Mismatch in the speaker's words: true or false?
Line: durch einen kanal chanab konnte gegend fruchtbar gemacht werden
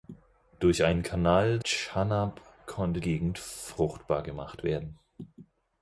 false